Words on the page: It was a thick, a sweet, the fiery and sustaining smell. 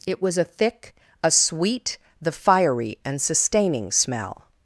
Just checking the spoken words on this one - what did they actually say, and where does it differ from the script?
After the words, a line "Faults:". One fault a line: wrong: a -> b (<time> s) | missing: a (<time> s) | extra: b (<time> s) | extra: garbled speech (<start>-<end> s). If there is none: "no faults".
It was a thick, a sweet, the fiery and sustaining smell.
Faults:
no faults